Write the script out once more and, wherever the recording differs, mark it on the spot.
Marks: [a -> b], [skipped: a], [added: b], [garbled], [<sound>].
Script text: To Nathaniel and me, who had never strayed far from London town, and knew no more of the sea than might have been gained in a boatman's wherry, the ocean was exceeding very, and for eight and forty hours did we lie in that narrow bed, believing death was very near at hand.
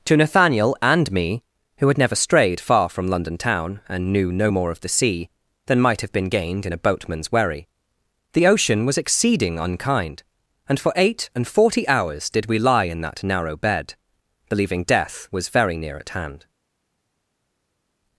To Nathaniel and me, who had never strayed far from London town, and knew no more of the sea than might have been gained in a boatman's wherry, the ocean was exceeding [very, -> unkind] and for eight and forty hours did we lie in that narrow bed, believing death was very near at hand.